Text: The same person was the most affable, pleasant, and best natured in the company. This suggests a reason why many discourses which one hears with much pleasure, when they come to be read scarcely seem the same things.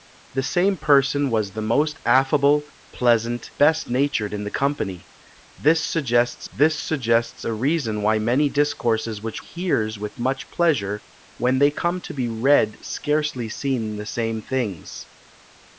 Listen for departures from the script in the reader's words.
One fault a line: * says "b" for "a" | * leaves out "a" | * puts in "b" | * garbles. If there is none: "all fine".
* leaves out "and"
* puts in "this suggests"
* leaves out "one"